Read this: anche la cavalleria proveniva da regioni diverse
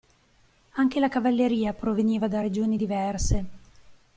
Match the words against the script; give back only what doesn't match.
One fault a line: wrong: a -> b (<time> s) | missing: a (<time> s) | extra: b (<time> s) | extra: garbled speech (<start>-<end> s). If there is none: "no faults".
no faults